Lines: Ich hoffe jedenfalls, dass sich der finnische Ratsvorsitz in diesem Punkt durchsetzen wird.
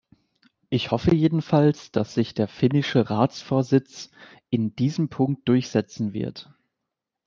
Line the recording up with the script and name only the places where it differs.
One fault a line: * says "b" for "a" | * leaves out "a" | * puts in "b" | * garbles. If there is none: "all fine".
all fine